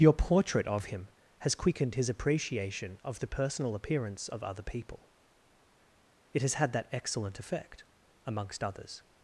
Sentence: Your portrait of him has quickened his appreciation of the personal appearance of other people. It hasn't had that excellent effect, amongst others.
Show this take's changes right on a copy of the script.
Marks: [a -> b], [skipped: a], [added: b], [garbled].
Your portrait of him has quickened his appreciation of the personal appearance of other people. It [hasn't -> has] had that excellent effect, amongst others.